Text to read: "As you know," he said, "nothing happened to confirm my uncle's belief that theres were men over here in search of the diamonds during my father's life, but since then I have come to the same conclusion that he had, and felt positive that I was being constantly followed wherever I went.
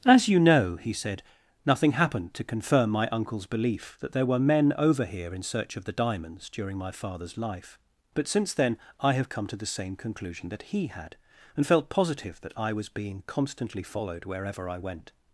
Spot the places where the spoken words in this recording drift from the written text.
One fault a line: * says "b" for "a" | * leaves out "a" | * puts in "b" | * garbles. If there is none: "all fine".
* says "there" for "theres"